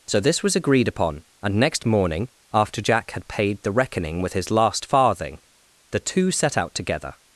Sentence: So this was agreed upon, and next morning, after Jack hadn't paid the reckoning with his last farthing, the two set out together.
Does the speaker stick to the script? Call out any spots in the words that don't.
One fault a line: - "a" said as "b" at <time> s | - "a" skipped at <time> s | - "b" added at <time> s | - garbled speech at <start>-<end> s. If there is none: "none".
- "hadn't" said as "had" at 3.1 s